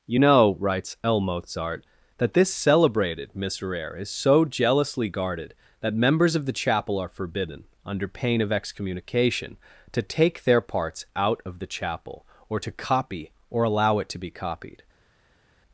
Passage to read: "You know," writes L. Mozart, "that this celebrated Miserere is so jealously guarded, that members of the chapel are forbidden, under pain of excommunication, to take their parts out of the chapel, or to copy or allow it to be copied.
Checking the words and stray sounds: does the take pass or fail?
pass